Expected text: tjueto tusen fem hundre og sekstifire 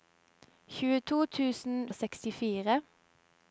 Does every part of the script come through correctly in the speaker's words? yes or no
no